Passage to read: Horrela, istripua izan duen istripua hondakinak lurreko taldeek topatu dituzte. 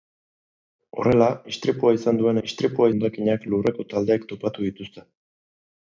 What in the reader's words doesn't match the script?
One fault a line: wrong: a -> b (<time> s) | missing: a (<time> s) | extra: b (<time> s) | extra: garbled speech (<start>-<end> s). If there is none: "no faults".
no faults